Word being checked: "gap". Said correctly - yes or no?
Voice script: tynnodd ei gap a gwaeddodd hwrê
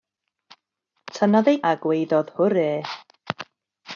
no